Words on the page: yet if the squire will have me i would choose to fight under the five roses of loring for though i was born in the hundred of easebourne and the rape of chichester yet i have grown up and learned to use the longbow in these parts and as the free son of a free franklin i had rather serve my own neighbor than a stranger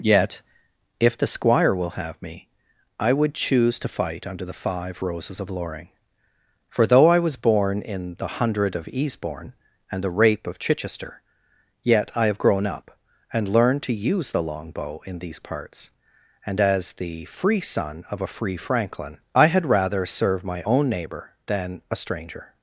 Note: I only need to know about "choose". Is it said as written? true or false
true